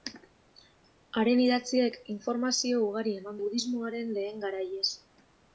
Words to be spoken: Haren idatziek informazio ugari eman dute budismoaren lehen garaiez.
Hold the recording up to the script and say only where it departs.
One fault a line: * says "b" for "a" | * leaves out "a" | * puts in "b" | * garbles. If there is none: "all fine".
* leaves out "dute"